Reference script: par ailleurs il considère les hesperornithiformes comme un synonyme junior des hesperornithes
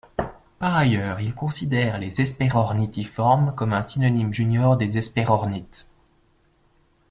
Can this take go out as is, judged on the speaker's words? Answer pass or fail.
pass